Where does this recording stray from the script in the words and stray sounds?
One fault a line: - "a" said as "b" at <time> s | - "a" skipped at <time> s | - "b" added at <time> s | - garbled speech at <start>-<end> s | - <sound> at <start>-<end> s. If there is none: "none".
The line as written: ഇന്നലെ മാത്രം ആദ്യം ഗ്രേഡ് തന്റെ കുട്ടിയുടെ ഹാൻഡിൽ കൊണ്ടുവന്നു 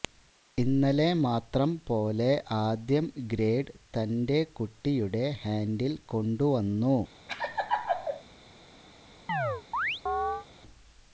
- "പോലെ" added at 1.9 s
- laugh at 7.3-8.2 s
- chirp at 9.3-10.5 s